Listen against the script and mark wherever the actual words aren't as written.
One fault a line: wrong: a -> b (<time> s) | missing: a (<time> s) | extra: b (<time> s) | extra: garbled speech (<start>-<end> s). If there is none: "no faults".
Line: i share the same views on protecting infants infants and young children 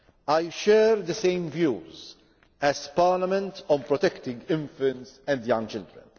extra: as parliament (2.6 s)
missing: infants (5.2 s)